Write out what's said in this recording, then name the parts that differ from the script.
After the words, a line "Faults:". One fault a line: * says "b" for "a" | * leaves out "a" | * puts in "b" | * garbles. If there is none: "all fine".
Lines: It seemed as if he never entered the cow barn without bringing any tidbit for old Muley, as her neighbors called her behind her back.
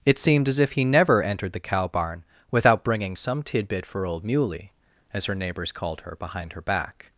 It seemed as if he never entered the cow barn without bringing some tidbit for old Muley, as her neighbors called her behind her back.
Faults:
* says "some" for "any"